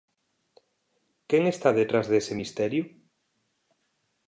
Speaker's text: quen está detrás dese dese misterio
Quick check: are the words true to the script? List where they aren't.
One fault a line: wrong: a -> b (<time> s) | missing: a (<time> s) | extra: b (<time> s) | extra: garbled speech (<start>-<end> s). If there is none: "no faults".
missing: dese (2.3 s)